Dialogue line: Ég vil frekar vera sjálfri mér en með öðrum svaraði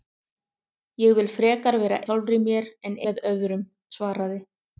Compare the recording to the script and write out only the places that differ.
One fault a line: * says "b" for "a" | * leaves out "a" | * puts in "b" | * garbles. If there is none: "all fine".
all fine